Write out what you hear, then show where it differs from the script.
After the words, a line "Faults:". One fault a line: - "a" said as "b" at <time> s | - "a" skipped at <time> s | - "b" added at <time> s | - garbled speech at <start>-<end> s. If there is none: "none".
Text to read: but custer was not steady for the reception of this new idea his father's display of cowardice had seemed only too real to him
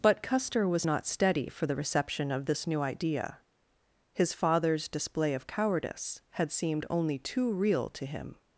but custer was not steady for the reception of this new idea his father's display of cowardice had seemed only too real to him
Faults:
none